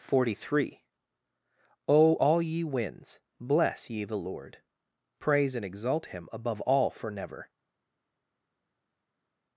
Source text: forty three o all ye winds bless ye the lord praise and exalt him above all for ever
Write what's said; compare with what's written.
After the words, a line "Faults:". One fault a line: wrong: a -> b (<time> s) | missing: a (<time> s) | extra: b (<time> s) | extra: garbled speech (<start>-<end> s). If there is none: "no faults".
forty three o all ye winds bless ye the lord praise and exalt him above all for never
Faults:
wrong: ever -> never (7.1 s)